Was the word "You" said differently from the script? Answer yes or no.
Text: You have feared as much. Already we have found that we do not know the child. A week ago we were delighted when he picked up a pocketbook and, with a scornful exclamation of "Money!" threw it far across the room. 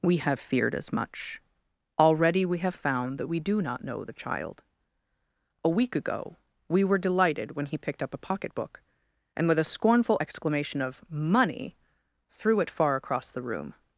yes